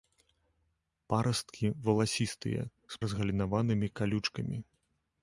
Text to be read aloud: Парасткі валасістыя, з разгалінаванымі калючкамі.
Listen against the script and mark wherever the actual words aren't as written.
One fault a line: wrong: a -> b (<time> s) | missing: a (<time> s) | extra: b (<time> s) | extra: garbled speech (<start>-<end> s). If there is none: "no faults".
no faults